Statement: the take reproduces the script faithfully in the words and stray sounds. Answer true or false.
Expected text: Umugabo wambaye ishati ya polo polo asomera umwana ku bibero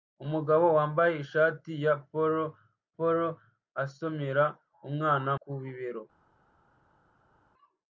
true